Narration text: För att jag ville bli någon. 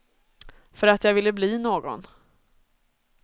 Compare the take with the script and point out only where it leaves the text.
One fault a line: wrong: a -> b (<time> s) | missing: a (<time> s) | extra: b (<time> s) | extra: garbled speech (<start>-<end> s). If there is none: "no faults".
no faults